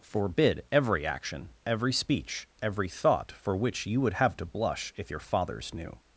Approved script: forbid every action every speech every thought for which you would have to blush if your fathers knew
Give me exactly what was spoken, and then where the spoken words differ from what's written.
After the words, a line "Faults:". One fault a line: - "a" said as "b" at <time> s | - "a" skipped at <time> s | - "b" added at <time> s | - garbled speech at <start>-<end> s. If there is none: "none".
forbid every action every speech every thought for which you would have to blush if your fathers knew
Faults:
none